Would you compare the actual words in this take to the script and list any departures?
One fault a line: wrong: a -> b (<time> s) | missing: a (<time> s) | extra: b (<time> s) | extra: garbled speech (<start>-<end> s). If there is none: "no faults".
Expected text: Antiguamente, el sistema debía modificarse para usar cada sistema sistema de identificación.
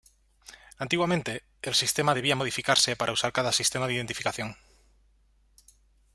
missing: sistema (3.8 s)